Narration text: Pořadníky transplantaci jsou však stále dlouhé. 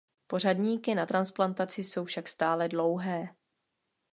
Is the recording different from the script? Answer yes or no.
yes